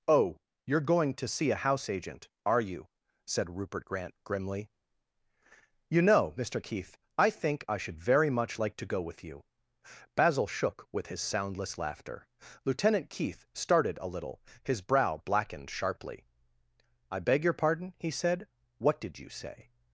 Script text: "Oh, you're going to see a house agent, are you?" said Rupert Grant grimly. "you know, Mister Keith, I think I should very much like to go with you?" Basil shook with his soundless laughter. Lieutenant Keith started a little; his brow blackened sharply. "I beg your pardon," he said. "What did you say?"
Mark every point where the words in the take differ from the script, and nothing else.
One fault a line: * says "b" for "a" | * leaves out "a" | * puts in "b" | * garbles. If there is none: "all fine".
all fine